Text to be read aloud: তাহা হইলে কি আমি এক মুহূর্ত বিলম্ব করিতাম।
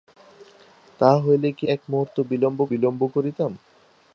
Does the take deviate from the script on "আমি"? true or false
true